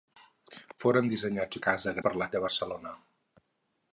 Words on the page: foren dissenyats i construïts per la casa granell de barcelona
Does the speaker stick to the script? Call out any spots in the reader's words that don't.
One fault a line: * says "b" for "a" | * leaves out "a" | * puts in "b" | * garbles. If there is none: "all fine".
* says "casa" for "construïts"
* leaves out "casa granell"